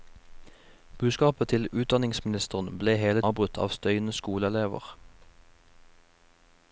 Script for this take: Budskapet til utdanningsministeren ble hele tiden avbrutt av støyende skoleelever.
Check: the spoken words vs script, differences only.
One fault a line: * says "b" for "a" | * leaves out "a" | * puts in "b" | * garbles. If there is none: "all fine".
* leaves out "tiden"